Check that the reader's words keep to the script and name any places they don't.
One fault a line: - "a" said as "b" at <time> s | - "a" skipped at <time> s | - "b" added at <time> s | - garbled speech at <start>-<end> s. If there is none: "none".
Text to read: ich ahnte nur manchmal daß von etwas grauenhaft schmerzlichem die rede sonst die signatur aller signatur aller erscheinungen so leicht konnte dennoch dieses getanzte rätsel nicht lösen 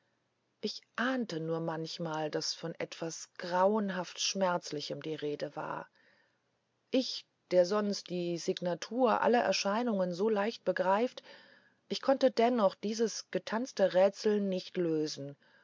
- "war ich der" added at 5.5 s
- "signatur aller" skipped at 9.4 s
- "begreift ich" added at 10.7 s